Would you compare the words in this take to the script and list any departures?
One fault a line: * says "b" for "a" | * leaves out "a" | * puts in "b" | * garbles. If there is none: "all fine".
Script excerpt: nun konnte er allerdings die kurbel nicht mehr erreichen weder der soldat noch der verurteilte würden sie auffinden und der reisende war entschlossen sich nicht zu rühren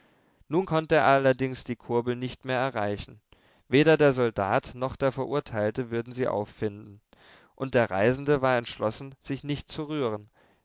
all fine